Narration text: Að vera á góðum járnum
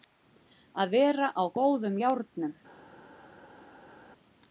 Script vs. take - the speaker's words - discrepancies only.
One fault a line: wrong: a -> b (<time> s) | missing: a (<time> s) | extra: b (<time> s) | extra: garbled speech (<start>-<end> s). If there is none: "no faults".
no faults